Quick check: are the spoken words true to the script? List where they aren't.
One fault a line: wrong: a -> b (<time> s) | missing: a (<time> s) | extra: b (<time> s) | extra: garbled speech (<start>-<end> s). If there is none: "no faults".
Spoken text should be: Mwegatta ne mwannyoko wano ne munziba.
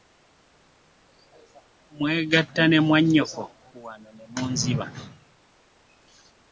no faults